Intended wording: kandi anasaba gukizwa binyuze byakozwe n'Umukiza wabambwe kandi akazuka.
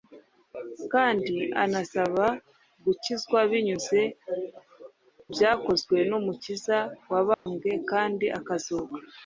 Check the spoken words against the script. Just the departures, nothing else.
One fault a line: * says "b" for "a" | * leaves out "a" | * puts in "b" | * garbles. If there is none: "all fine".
all fine